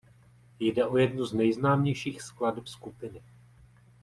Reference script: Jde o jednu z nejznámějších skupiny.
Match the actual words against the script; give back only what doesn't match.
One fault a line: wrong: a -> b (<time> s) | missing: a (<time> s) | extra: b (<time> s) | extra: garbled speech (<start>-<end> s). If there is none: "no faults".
extra: skladeb (2.2 s)